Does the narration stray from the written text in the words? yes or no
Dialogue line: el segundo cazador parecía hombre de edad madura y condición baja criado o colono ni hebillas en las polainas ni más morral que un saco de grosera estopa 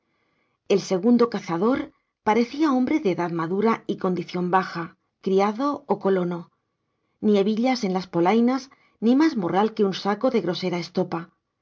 no